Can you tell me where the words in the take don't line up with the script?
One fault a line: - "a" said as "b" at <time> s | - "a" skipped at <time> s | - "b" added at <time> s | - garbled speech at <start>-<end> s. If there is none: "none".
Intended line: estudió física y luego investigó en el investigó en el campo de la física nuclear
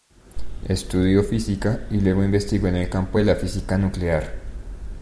- "investigó en el" skipped at 2.9 s